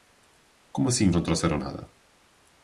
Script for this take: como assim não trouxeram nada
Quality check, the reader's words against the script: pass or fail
pass